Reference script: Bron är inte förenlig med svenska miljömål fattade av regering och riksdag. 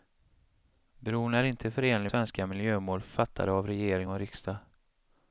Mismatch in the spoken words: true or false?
true